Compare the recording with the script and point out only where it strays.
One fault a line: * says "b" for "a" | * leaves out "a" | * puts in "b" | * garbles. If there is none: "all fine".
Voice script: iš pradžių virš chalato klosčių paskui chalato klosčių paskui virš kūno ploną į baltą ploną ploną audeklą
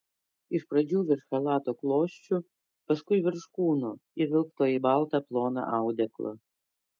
* leaves out "chalato klosčių paskui"
* says "įvilkto" for "ploną"
* leaves out "ploną"